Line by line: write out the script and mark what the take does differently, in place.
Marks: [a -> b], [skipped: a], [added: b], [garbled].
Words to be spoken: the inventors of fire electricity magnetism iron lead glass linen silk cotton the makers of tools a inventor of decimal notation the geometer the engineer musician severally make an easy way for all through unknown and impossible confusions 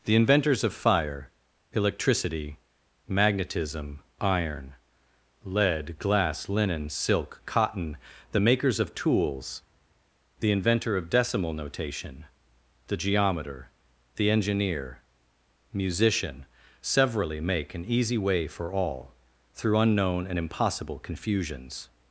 the inventors of fire electricity magnetism iron lead glass linen silk cotton the makers of tools [a -> the] inventor of decimal notation the geometer the engineer musician severally make an easy way for all through unknown and impossible confusions